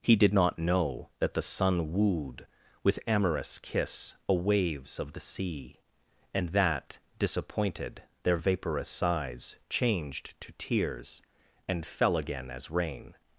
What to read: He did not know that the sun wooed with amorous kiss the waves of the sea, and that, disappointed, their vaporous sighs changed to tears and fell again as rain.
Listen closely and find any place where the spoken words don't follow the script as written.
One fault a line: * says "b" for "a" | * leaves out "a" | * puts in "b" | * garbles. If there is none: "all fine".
* says "a" for "the"